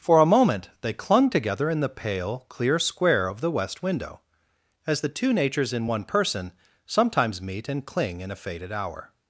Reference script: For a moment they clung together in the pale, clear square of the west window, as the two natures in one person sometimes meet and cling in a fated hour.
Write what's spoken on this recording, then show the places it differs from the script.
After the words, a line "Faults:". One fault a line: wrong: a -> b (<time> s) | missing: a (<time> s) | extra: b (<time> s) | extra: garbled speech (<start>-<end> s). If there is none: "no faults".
For a moment they clung together in the pale, clear square of the west window, as the two natures in one person sometimes meet and cling in a fated hour.
Faults:
no faults